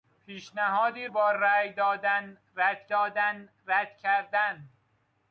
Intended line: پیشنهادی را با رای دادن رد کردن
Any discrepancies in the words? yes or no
yes